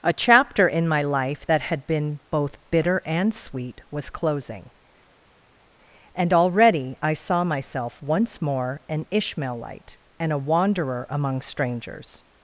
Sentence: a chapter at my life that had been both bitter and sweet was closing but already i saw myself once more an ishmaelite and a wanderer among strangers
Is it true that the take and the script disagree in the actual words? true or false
true